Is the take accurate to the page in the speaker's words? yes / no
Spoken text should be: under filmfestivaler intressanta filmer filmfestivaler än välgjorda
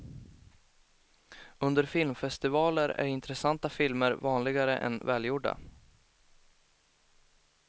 no